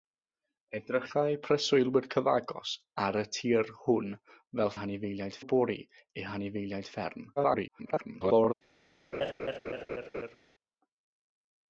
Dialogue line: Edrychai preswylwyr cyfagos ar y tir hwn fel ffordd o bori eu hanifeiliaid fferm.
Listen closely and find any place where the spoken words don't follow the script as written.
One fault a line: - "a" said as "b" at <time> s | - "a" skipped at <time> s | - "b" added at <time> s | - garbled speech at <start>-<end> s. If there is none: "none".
- "ffordd" said as "hanifeiliaid" at 4.8 s
- garbled speech at 7.4-8.5 s